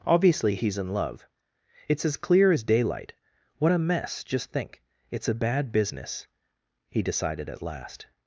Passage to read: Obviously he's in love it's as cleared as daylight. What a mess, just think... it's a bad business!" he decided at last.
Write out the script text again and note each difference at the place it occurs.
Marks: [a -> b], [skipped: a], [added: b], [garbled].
Obviously he's in love it's as [cleared -> clear] as daylight. What a mess, just think... it's a bad business!" he decided at last.